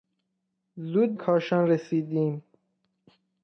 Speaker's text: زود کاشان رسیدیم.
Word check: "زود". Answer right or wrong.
right